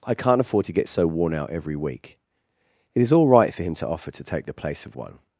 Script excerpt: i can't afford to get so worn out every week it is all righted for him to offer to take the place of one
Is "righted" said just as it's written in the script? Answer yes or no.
no